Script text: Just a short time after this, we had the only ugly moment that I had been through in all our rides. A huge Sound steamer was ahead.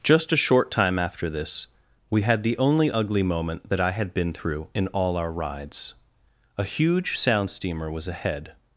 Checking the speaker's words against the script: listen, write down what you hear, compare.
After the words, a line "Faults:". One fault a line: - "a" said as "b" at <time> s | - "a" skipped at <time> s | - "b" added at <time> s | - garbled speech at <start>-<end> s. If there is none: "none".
Just a short time after this, we had the only ugly moment that I had been through in all our rides. A huge Sound steamer was ahead.
Faults:
none